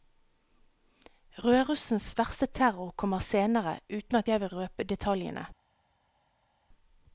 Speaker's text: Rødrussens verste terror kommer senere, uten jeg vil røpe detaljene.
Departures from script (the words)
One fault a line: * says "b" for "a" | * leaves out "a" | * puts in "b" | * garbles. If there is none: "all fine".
* puts in "at"